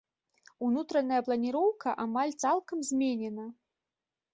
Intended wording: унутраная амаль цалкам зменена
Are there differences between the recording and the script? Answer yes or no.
yes